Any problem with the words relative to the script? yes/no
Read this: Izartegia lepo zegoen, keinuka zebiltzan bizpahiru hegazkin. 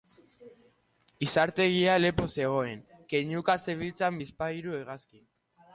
no